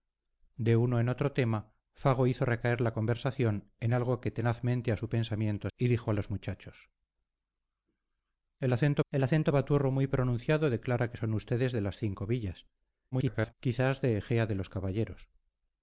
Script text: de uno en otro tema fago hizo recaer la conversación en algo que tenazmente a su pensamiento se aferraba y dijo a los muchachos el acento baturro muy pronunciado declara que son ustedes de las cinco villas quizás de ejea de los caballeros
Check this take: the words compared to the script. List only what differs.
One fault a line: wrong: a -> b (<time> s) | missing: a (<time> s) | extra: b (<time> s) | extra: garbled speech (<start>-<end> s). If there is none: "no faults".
missing: se aferraba (5.7 s)
extra: el acento (9.1 s)
extra: garbled speech (13.1-13.5 s)